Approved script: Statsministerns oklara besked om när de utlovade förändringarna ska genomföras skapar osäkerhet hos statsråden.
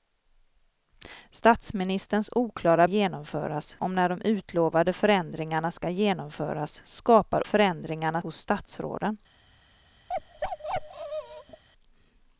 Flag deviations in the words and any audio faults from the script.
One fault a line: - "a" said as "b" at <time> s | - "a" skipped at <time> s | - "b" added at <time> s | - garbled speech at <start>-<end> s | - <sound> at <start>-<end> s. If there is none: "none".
- "besked" said as "genomföras" at 2.8 s
- "osäkerhet" said as "förändringarna" at 7.4 s
- bark at 10.1-11.6 s